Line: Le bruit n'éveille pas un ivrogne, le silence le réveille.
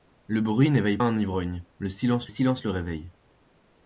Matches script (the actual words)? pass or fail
fail